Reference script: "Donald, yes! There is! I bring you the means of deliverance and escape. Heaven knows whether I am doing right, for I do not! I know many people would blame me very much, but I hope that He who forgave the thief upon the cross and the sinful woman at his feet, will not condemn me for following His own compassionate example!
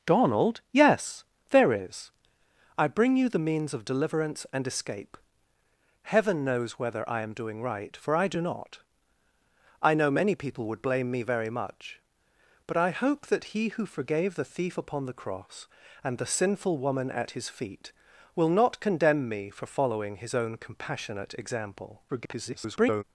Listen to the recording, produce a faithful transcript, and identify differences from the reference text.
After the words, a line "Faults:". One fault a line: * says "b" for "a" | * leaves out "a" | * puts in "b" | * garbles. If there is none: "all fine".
"Donald, yes! There is! I bring you the means of deliverance and escape. Heaven knows whether I am doing right, for I do not! I know many people would blame me very much, but I hope that He who forgave the thief upon the cross and the sinful woman at his feet, will not condemn me for following His own compassionate example! [garbled]
Faults:
* garbles